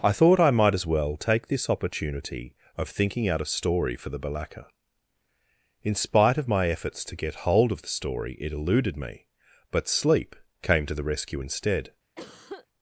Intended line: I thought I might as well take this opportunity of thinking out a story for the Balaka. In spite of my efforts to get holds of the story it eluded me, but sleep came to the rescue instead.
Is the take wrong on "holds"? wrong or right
wrong